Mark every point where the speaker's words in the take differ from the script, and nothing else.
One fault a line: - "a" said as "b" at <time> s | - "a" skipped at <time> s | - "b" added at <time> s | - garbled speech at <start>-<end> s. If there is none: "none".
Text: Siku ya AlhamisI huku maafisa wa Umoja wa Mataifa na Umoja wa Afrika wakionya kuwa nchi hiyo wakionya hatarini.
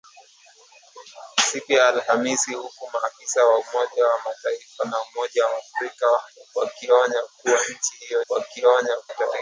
none